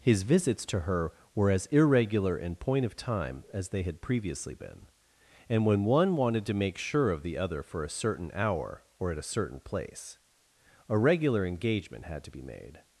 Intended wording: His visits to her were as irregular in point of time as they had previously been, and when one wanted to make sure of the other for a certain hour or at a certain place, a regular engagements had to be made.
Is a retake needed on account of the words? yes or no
yes